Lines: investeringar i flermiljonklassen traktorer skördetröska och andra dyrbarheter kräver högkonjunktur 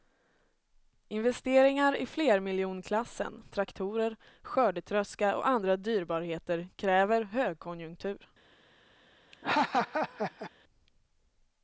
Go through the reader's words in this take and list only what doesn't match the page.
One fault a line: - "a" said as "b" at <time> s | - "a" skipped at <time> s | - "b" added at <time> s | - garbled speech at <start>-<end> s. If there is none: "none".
none